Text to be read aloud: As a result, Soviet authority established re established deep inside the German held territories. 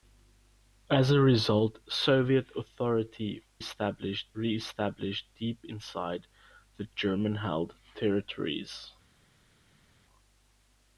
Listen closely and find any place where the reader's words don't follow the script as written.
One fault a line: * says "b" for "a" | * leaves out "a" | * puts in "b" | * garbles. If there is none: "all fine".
all fine